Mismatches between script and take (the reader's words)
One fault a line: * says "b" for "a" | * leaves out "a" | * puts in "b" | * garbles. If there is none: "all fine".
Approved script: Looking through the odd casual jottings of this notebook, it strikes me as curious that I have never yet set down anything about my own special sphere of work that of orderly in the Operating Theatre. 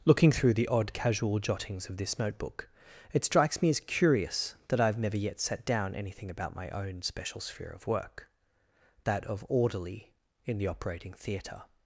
all fine